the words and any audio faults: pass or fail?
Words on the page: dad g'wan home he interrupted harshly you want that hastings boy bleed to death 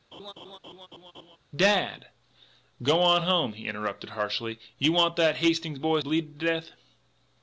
fail